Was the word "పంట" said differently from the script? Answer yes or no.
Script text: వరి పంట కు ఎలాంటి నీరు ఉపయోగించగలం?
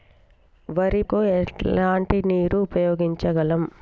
yes